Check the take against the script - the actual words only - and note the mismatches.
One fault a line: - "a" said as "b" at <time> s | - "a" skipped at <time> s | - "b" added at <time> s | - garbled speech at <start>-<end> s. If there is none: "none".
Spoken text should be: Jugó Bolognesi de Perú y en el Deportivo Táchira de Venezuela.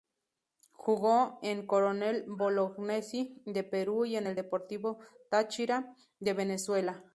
- "en Coronel" added at 1.4 s